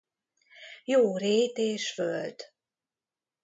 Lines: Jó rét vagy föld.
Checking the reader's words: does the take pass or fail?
fail